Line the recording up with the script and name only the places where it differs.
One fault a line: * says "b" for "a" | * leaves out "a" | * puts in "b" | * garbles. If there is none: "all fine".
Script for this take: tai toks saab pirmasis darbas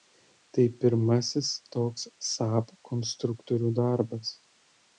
* puts in "pirmasis"
* says "konstruktorių" for "pirmasis"